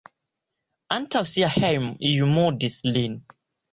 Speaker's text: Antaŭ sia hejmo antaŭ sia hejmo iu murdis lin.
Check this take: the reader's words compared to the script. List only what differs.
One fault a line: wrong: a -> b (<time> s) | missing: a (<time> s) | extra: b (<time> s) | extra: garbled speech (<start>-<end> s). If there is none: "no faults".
missing: antaŭ sia hejmo (1.9 s)